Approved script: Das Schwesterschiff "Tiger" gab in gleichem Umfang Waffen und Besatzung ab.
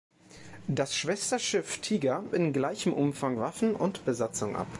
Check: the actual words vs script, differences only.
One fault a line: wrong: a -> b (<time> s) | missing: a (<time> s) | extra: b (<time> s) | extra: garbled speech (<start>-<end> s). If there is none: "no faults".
missing: gab (2.2 s)